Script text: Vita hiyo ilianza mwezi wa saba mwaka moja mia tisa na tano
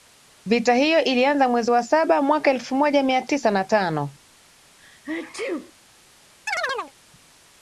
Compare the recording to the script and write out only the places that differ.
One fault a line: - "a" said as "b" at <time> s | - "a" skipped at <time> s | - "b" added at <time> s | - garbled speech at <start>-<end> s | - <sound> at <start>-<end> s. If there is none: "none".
- "elfu" added at 2.5 s
- sneeze at 4.8-5.7 s
- chirp at 6.5-6.9 s